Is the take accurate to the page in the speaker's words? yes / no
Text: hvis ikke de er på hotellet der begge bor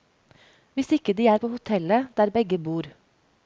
yes